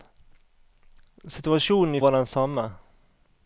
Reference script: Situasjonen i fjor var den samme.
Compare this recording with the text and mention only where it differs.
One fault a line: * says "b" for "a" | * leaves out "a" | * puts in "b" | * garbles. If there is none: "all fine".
* leaves out "fjor"